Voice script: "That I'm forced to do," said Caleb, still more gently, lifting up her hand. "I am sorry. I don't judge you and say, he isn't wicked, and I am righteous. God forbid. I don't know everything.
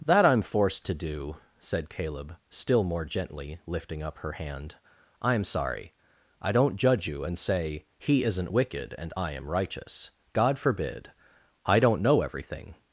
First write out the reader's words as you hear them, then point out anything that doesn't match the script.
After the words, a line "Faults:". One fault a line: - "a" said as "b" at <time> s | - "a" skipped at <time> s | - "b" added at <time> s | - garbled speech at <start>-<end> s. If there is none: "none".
"That I'm forced to do," said Caleb, still more gently, lifting up her hand. "I am sorry. I don't judge you and say, he isn't wicked, and I am righteous. God forbid. I don't know everything.
Faults:
none